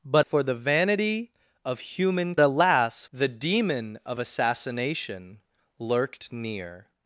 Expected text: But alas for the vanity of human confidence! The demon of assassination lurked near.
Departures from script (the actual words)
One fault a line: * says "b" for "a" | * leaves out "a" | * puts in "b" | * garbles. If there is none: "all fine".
* leaves out "alas"
* says "alas" for "confidence"